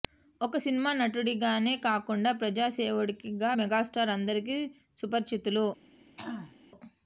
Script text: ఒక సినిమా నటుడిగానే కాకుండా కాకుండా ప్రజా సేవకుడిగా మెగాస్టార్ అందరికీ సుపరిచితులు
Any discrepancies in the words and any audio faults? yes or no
yes